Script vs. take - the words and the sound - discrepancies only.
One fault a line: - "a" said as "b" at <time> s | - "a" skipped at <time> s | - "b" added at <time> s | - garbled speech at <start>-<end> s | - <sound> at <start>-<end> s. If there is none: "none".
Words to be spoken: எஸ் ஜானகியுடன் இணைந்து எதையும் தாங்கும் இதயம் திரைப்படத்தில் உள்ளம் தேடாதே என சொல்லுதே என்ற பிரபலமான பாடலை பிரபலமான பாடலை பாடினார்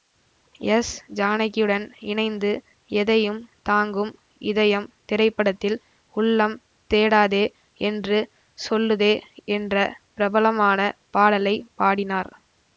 - "என" said as "என்று" at 7.8 s
- "பிரபலமான பாடலை" skipped at 11.5 s